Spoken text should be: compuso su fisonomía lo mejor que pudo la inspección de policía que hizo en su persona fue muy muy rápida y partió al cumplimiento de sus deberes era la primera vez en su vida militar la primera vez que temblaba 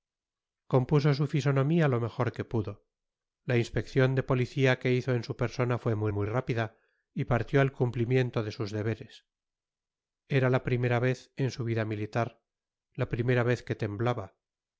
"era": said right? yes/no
yes